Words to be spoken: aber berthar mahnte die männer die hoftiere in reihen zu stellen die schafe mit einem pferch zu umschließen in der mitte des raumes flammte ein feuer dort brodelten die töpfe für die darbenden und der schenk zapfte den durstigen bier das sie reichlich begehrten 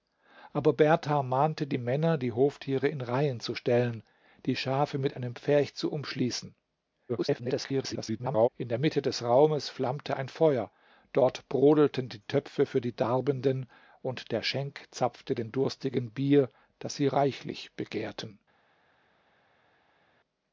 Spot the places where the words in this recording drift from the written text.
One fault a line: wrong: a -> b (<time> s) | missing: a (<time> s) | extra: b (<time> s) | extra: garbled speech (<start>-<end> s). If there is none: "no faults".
extra: garbled speech (7.1-8.5 s)